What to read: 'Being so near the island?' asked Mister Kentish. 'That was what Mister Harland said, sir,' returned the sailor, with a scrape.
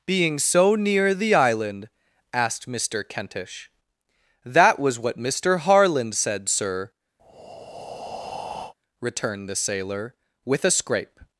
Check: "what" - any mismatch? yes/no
no